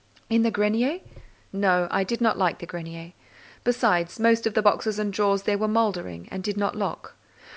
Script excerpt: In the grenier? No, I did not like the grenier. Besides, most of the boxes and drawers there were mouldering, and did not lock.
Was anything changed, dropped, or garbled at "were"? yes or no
no